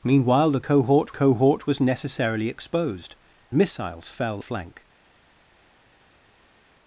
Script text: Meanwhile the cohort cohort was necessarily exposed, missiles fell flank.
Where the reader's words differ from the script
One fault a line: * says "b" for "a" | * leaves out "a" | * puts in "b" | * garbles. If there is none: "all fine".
all fine